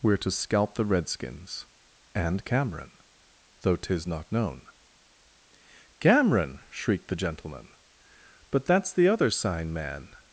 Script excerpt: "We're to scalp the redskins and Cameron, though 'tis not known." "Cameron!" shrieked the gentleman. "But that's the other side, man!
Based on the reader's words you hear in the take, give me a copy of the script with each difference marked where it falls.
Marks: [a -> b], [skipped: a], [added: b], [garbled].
"We're to scalp the redskins and Cameron, though 'tis not known." "Cameron!" shrieked the gentleman. "But that's the other [side, -> sign] man!